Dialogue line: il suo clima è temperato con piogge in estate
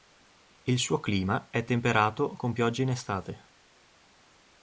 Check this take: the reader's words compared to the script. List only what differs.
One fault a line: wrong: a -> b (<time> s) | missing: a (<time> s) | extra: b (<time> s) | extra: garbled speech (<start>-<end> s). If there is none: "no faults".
no faults